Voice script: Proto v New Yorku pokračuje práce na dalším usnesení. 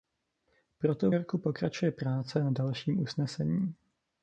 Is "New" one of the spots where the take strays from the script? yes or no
yes